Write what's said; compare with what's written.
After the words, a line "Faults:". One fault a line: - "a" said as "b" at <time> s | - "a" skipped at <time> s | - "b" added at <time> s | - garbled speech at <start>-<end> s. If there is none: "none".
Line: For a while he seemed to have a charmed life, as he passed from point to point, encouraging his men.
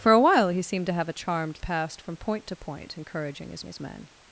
For a while he seemed to have a charmed passed from point to point, encouraging his his men.
Faults:
- "life as he" skipped at 1.6 s
- "his" added at 3.6 s